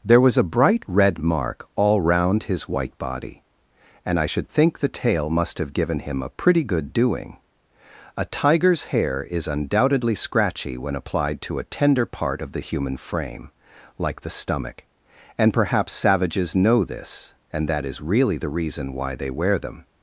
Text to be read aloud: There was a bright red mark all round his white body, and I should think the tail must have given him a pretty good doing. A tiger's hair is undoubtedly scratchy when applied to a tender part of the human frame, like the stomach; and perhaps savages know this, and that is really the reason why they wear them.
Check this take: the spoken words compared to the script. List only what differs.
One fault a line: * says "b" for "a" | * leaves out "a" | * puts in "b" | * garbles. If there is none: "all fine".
all fine